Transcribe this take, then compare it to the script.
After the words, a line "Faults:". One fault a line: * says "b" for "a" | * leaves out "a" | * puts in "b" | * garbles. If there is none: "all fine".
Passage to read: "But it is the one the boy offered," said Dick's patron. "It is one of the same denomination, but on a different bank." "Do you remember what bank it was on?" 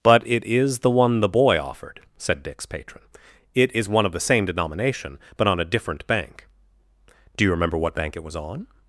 "But it is the one the boy offered," said Dick's patron. "It is one of the same denomination, but on a different bank." "Do you remember what bank it was on?"
Faults:
all fine